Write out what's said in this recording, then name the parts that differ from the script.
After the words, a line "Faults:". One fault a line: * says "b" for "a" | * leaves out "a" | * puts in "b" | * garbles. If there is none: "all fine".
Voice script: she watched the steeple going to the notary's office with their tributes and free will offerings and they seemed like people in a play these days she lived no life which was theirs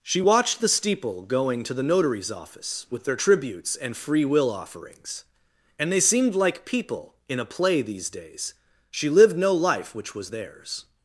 she watched the steeple going to the notary's office with their tributes and free will offerings and they seemed like people in a play these days she lived no life which was theirs
Faults:
all fine